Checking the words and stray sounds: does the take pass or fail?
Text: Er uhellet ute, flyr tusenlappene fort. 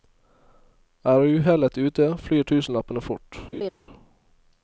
fail